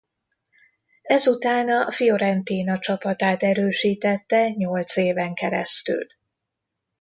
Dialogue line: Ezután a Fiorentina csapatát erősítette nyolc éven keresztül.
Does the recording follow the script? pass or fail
pass